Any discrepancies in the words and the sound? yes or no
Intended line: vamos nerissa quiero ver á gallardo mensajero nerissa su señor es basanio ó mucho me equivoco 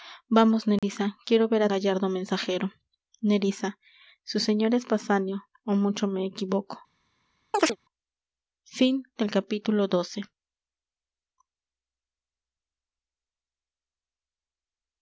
yes